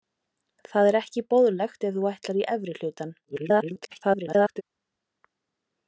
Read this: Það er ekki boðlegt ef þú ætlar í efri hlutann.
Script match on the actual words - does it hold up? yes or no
no